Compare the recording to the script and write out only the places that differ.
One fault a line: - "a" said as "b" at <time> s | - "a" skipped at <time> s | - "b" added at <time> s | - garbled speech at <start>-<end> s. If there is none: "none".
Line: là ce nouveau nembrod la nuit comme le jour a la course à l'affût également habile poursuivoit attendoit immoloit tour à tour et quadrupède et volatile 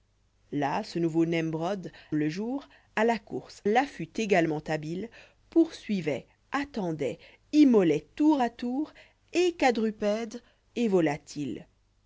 - "la nuit comme" skipped at 1.9 s
- "à" skipped at 3.6 s